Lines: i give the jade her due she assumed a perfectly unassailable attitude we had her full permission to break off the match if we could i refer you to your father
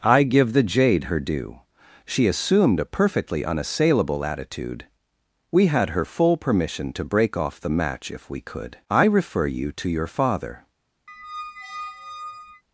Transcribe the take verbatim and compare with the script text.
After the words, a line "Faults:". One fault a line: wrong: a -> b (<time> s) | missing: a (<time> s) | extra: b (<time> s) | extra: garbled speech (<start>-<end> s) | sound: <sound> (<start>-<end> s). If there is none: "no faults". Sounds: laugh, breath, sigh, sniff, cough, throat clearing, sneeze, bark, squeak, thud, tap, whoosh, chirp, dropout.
i give the jade her due she assumed a perfectly unassailable attitude we had her full permission to break off the match if we could i refer you to your father
Faults:
sound: squeak (11.1-12.6 s)